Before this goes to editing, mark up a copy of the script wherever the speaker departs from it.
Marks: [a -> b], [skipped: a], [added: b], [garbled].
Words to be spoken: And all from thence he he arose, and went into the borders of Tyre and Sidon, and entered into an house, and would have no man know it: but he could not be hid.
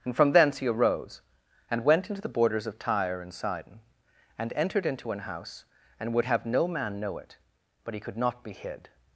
And [skipped: all] from thence he [skipped: he] arose, and went into the borders of Tyre and Sidon, and entered into an house, and would have no man know it: but he could not be hid.